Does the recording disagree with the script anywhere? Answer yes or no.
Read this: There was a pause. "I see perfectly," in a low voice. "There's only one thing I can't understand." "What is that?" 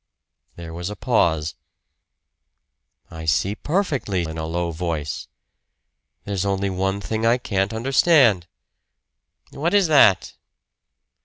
no